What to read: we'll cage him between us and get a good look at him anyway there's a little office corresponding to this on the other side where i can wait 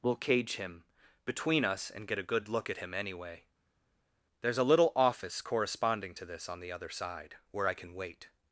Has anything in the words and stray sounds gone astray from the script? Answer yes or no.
no